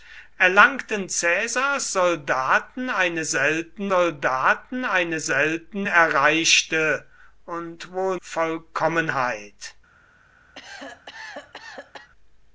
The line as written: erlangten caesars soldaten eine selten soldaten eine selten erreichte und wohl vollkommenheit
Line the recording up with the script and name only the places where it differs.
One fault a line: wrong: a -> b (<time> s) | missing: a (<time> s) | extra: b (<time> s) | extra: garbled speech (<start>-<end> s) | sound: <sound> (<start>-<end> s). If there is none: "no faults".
sound: cough (10.5-12.1 s)